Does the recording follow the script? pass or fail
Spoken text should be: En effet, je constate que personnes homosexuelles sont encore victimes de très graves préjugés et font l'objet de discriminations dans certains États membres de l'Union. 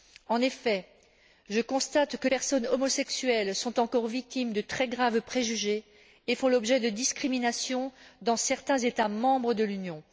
pass